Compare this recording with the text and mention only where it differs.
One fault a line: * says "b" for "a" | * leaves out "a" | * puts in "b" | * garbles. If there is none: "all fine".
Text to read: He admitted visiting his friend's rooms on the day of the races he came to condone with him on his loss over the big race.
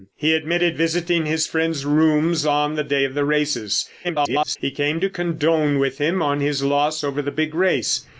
* garbles